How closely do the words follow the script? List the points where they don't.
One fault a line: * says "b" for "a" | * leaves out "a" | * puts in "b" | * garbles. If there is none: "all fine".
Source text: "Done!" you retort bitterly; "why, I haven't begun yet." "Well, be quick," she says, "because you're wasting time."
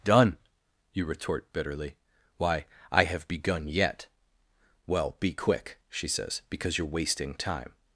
* says "have" for "haven't"